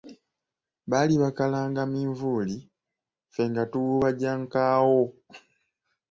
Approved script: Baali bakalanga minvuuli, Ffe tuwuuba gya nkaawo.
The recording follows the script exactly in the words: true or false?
false